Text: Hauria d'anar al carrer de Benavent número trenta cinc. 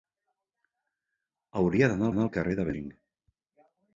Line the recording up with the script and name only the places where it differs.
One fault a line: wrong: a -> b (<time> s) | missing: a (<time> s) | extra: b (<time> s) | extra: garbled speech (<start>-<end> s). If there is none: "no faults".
extra: d'anar (2.1 s)
missing: Benavent número trenta (2.7 s)